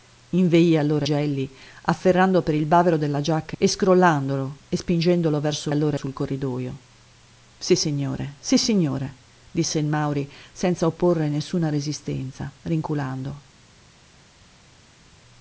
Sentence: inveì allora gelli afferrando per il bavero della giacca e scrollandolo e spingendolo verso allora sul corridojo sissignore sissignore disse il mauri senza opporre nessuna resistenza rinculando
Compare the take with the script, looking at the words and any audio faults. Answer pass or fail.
pass